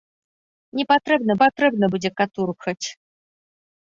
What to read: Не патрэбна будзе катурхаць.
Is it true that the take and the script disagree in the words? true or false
true